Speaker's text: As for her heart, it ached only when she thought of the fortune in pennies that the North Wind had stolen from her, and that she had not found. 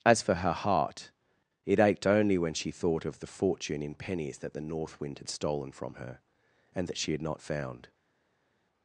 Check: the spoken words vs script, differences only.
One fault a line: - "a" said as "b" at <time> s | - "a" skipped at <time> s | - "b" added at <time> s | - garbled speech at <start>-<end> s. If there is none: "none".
none